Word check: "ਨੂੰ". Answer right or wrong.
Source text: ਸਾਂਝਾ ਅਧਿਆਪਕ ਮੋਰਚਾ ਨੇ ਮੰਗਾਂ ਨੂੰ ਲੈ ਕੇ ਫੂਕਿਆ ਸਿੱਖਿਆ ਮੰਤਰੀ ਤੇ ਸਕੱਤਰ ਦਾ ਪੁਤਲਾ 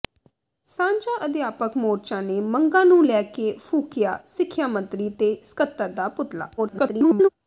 right